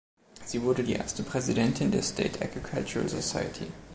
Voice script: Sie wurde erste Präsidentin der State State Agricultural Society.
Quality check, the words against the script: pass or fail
fail